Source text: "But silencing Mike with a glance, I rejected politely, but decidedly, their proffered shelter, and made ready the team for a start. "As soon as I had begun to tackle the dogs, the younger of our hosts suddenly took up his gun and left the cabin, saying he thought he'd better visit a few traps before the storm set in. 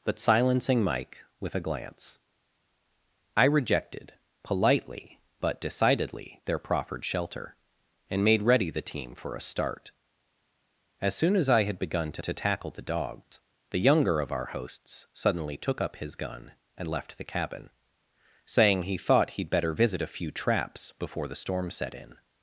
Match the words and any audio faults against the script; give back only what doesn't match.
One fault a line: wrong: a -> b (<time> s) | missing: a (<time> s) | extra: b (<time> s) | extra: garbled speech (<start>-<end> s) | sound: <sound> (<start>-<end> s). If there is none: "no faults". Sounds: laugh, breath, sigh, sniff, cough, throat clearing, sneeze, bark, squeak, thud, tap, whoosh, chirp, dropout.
extra: to (12.2 s)
sound: dropout (13.2-13.3 s)